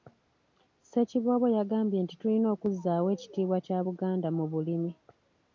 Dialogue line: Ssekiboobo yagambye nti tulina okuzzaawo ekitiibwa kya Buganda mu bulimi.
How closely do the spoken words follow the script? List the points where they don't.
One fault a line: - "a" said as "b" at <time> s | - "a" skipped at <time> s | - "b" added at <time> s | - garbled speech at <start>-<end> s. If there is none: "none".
none